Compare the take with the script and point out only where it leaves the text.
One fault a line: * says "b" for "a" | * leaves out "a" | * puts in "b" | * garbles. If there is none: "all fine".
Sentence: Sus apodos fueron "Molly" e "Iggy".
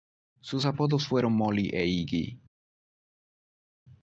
all fine